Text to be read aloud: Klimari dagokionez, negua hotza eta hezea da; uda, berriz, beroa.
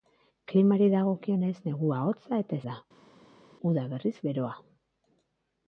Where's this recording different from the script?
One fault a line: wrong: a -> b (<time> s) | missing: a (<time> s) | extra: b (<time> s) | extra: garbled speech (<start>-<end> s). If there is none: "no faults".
missing: hezea (2.6 s)